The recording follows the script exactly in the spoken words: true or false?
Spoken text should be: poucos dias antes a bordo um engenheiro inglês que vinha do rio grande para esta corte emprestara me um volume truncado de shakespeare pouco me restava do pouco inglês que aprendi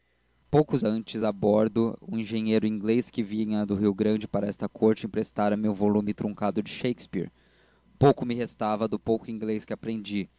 false